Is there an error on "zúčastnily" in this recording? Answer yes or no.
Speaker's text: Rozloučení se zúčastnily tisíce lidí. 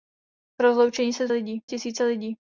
yes